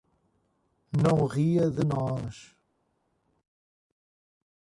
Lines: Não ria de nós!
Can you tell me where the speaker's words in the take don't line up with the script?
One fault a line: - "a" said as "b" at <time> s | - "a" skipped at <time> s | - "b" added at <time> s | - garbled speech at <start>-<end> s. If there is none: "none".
none